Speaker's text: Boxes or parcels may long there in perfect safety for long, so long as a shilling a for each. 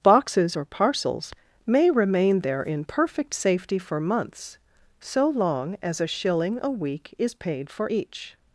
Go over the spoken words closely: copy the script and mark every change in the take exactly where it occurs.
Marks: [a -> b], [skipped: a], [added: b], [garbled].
Boxes or parcels may [long -> remain] there in perfect safety for [long, -> months] so long as a shilling a [added: week is paid] for each.